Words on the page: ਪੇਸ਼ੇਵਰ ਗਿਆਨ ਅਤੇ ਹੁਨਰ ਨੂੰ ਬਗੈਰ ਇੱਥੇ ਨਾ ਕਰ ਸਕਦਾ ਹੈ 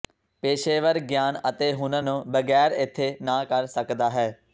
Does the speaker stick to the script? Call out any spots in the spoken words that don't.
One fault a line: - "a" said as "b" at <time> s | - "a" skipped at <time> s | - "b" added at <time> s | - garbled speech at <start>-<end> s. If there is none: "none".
none